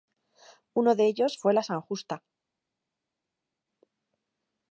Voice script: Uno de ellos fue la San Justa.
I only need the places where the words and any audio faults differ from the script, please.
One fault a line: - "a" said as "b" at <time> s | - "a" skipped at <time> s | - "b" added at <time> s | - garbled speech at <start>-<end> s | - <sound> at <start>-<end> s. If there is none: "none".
none